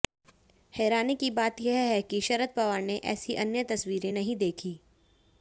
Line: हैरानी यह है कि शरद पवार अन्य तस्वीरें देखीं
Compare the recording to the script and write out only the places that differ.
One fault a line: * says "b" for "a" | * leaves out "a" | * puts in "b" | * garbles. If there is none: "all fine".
* puts in "की बात"
* puts in "ने ऐसी"
* puts in "नहीं"